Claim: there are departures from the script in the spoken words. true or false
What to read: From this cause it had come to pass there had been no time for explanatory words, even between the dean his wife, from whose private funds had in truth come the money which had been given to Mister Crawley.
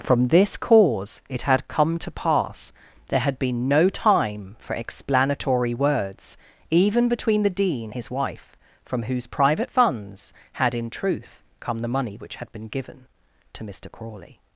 false